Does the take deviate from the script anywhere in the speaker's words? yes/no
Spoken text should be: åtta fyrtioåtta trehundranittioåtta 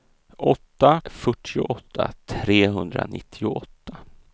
no